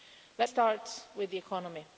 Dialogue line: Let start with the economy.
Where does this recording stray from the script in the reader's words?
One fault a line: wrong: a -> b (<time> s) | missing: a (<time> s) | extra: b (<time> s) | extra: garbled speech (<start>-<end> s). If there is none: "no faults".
no faults